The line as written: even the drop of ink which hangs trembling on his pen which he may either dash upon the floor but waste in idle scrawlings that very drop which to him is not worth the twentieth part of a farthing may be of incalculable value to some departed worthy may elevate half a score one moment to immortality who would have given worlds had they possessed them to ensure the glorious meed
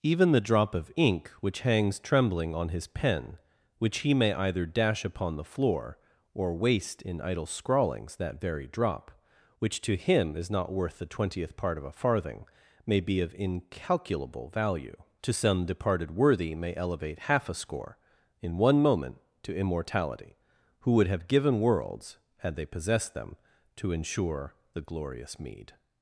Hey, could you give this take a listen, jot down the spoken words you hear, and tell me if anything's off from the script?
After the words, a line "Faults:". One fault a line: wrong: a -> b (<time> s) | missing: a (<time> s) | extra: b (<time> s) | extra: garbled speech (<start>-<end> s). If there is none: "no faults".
even the drop of ink which hangs trembling on his pen which he may either dash upon the floor or waste in idle scrawlings that very drop which to him is not worth the twentieth part of a farthing may be of incalculable value to some departed worthy may elevate half a score in one moment to immortality who would have given worlds had they possessed them to ensure the glorious meed
Faults:
wrong: but -> or (6.3 s)
extra: in (18.4 s)